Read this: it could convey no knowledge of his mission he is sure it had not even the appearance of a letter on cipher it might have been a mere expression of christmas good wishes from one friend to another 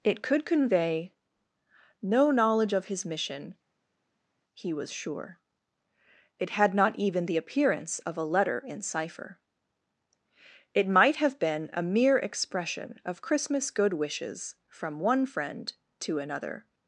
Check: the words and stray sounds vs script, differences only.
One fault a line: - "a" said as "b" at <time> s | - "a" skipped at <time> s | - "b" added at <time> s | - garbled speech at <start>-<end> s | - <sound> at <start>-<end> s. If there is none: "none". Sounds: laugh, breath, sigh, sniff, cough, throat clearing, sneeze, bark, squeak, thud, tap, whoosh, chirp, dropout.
- "is" said as "was" at 4.7 s
- "on" said as "in" at 8.6 s